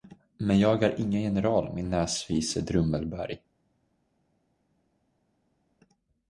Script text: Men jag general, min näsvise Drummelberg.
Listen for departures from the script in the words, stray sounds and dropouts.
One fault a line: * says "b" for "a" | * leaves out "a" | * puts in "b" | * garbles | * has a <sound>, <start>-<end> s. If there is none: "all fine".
* puts in "är ingen"